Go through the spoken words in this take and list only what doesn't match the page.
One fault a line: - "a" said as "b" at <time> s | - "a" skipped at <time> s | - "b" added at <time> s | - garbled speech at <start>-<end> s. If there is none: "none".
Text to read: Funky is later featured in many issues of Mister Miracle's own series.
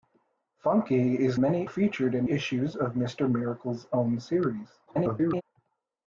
- "later" said as "many" at 1.4 s
- "many" skipped at 2.3 s
- garbled speech at 4.9-5.4 s